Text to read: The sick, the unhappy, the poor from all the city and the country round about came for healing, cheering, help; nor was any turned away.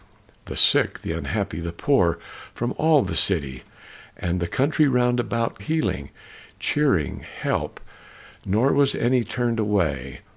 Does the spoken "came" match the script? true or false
false